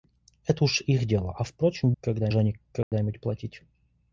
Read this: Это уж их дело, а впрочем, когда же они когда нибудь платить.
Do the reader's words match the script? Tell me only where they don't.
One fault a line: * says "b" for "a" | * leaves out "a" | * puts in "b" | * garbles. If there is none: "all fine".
all fine